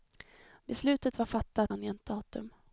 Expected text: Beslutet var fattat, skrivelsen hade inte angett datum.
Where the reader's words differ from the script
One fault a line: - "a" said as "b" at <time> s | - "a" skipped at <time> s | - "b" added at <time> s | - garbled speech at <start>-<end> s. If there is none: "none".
- "skrivelsen hade inte" skipped at 1.7 s